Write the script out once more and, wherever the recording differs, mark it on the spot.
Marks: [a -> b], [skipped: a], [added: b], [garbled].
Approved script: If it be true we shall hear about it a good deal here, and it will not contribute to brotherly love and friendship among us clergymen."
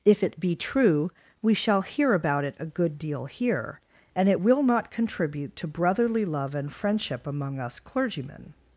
If it be true we shall hear about it a good deal here, and it will not contribute to brotherly love and friendship among us clergymen."